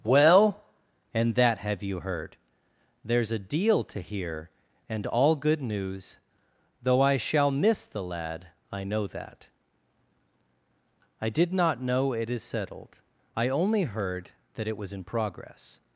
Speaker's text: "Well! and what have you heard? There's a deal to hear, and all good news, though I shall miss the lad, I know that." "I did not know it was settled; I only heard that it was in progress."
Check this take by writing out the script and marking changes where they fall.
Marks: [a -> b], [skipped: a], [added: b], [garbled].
"Well! and [what -> that] have you heard? There's a deal to hear, and all good news, though I shall miss the lad, I know that." "I did not know it [was -> is] settled; I only heard that it was in progress."